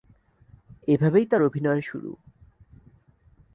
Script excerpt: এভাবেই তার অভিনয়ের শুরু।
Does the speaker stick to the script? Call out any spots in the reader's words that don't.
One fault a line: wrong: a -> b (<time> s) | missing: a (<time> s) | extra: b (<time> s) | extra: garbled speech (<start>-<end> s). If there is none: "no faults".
no faults